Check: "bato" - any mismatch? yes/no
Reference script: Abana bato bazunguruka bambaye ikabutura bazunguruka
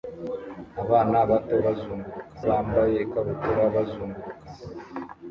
no